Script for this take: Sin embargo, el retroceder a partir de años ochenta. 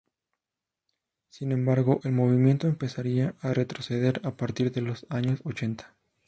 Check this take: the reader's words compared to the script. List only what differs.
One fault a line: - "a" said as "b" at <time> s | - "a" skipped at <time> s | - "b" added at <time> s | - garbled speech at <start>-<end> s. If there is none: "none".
- "movimiento empezaría a" added at 2.1 s
- "los" added at 4.8 s